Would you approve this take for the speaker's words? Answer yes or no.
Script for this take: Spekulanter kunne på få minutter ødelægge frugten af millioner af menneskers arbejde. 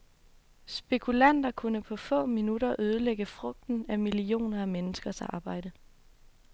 yes